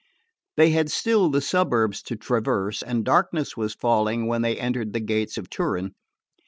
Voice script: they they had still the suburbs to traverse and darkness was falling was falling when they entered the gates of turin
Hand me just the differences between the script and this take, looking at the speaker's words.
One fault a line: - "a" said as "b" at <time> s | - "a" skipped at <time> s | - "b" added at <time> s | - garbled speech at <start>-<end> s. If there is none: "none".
- "they" skipped at 0.7 s
- "was falling" skipped at 4.3 s